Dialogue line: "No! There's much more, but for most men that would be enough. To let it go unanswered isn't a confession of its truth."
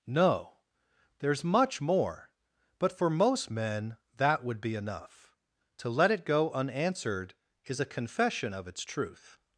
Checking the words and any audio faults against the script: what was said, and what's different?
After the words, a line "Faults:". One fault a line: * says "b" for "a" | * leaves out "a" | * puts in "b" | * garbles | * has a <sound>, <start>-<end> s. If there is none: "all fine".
"No! There's much more, but for most men that would be enough. To let it go unanswered is a confession of its truth."
Faults:
* says "is" for "isn't"